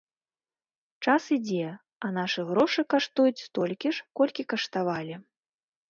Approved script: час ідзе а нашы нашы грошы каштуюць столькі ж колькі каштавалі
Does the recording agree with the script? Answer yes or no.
no